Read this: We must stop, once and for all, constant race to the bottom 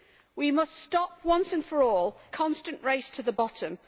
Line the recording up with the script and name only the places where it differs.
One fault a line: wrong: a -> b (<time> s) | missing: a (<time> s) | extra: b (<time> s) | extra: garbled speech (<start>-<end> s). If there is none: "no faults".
no faults